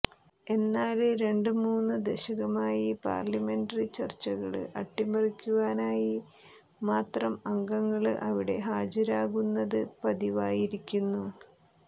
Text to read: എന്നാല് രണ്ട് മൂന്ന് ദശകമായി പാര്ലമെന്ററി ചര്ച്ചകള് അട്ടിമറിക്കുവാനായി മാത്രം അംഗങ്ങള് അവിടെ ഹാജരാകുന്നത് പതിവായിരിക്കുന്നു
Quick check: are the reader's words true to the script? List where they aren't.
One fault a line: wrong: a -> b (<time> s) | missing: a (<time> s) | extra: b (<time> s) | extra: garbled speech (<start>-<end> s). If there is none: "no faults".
no faults